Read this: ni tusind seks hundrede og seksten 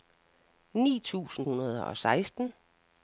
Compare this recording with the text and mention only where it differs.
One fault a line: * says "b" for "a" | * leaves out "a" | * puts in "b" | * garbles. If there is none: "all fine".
* leaves out "seks"